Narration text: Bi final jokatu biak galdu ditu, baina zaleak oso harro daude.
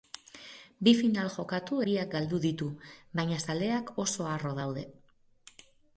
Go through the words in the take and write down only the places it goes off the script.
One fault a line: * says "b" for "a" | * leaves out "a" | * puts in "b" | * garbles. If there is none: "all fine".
all fine